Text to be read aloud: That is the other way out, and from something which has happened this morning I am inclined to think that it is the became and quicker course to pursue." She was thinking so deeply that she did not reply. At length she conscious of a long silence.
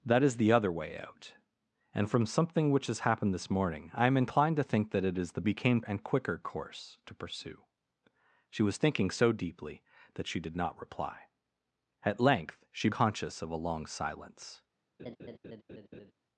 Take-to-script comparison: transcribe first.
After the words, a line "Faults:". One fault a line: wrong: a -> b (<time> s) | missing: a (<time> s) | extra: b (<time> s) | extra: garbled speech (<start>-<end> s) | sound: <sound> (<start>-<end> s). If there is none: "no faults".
That is the other way out, and from something which has happened this morning I am inclined to think that it is the became and quicker course to pursue." She was thinking so deeply that she did not reply. At length she conscious of a long silence.
Faults:
sound: laugh (15.0-16.1 s)